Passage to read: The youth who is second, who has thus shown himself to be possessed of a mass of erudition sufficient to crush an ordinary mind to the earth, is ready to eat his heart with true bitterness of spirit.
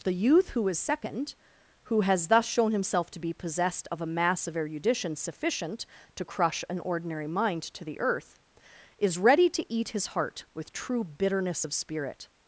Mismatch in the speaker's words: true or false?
false